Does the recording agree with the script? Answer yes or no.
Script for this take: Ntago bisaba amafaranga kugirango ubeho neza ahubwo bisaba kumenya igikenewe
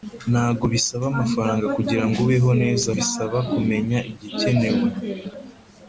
no